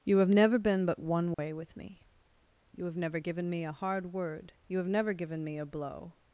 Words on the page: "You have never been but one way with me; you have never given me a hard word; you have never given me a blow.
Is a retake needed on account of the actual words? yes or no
no